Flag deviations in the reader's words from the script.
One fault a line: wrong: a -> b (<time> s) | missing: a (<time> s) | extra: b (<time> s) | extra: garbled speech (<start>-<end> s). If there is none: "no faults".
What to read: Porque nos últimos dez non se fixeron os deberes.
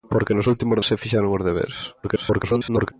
missing: dez non (0.8 s)
extra: garbled speech (2.0-2.9 s)